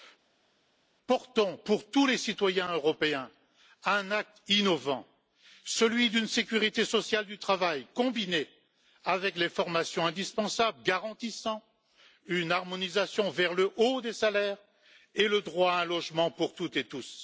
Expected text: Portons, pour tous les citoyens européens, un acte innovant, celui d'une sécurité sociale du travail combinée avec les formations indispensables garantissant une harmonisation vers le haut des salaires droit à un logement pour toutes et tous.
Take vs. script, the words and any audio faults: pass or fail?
fail